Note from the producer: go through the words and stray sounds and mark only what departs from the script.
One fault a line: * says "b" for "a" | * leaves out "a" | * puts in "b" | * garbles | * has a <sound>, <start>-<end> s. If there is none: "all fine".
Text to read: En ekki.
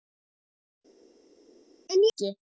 all fine